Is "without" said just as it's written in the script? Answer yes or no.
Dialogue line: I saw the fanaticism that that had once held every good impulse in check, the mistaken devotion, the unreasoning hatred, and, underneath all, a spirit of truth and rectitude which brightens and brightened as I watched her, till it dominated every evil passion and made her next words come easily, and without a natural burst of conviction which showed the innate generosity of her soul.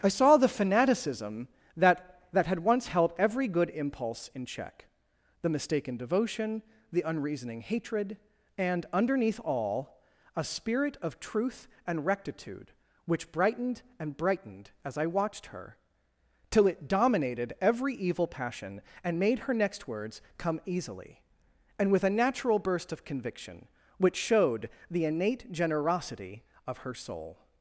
no